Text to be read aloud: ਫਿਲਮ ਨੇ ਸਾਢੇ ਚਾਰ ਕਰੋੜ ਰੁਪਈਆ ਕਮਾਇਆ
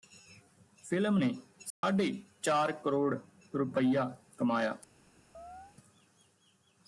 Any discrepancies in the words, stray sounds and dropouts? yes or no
yes